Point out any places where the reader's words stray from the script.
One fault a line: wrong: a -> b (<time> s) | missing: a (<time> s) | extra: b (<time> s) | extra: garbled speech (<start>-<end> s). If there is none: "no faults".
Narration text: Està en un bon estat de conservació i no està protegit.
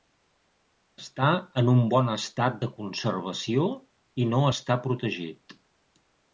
no faults